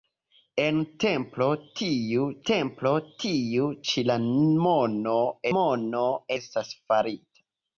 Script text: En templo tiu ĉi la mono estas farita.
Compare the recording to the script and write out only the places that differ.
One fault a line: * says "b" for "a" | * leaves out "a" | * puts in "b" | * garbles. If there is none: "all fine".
* puts in "templo tiu"
* puts in "mono"